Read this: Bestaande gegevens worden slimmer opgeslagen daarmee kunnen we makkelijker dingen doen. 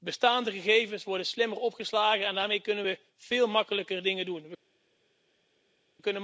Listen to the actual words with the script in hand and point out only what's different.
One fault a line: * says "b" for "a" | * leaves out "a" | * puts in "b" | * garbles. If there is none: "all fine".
* puts in "en"
* puts in "veel"